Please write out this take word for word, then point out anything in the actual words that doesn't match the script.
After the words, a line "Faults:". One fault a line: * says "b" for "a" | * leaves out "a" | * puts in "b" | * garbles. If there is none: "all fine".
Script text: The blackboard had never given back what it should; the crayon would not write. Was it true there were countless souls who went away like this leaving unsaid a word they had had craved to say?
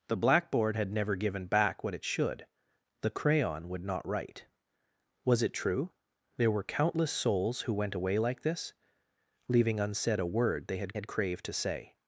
The blackboard had never given back what it should; the crayon would not write. Was it true there were countless souls who went away like this leaving unsaid a word they had had craved to say?
Faults:
all fine